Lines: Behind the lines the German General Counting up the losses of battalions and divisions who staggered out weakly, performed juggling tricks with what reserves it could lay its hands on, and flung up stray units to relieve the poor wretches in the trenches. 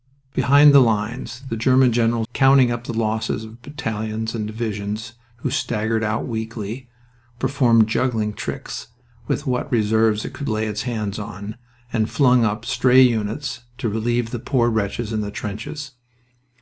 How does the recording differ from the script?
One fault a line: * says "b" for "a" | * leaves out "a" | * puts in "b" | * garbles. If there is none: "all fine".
all fine